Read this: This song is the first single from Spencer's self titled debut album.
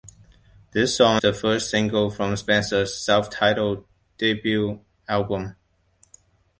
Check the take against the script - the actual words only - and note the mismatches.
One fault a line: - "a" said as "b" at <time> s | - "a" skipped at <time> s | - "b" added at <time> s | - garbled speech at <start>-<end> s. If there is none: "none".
- "is" skipped at 1.2 s